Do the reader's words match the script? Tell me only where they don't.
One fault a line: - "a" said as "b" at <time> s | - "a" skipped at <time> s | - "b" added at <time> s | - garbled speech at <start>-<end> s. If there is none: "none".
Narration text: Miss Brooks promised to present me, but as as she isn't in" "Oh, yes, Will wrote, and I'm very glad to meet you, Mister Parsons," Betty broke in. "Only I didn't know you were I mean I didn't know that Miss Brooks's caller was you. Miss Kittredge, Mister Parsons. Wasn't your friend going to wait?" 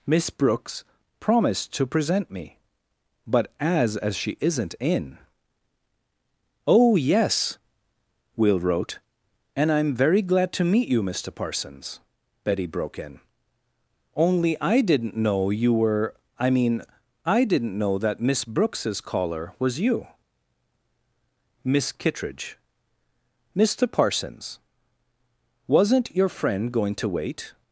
none